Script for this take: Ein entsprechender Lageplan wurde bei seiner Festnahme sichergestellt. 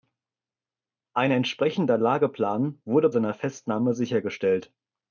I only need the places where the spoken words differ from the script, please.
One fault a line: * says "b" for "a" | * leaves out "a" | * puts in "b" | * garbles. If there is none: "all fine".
* leaves out "bei"